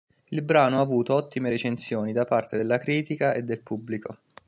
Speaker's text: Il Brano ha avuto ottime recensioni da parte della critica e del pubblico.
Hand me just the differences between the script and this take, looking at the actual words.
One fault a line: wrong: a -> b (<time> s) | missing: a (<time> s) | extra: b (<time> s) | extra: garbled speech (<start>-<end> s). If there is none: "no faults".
no faults